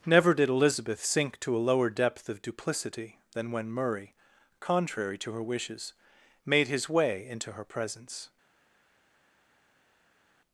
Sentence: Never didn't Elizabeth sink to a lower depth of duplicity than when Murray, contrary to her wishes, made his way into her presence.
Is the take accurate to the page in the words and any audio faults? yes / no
no